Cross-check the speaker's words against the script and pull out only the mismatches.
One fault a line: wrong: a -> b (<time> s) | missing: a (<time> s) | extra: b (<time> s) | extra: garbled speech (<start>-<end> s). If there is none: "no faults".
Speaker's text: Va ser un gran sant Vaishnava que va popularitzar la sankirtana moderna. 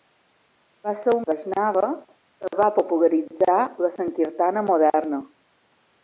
missing: gran sant (1.2 s)